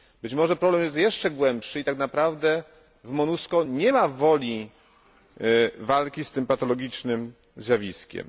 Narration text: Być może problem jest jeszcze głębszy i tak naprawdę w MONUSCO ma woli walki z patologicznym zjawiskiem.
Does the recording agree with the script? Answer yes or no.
no